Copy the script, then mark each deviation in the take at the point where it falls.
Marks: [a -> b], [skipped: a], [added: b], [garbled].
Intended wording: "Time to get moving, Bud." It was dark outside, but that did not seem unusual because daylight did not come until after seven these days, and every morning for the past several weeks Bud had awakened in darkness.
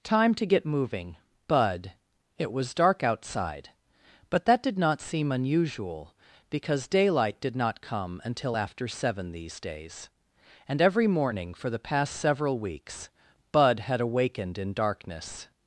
"Time to get moving, Bud." It was dark outside, but that did not seem unusual because daylight did not come until after seven these days, and every morning for the past several weeks Bud had awakened in darkness.